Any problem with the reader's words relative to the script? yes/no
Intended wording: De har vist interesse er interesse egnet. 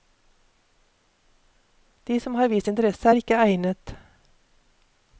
yes